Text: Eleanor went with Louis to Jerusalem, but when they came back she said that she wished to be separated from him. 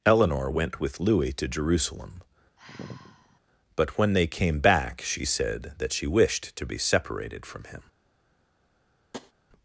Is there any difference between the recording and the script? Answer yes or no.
no